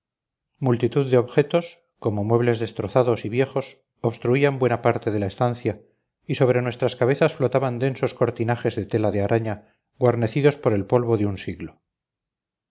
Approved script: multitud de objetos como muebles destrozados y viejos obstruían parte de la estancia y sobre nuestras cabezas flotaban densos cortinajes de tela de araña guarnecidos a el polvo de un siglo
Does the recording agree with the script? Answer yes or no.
no